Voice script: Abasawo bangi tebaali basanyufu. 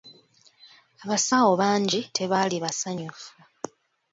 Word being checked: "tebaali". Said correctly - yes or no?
yes